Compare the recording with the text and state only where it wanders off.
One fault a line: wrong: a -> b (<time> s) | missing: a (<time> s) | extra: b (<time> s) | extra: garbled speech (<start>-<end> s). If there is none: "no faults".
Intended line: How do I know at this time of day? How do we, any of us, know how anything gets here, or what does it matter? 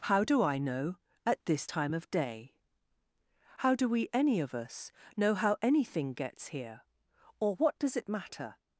no faults